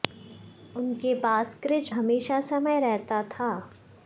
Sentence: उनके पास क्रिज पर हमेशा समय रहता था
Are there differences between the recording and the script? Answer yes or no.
yes